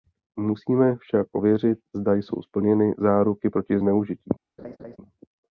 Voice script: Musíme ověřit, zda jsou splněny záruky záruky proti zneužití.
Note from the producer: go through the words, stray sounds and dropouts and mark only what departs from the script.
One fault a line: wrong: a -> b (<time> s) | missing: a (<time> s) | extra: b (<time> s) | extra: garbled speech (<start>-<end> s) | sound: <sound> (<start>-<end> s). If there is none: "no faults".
extra: však (0.9 s)
missing: záruky (3.5 s)
sound: laugh (4.6-5.0 s)